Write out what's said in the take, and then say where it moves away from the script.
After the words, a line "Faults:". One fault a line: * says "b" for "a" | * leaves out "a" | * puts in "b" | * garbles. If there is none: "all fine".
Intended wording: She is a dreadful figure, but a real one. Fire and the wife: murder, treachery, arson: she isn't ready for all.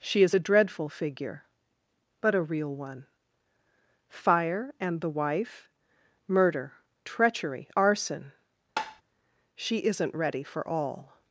She is a dreadful figure, but a real one. Fire and the wife: murder, treachery, arson: she isn't ready for all.
Faults:
all fine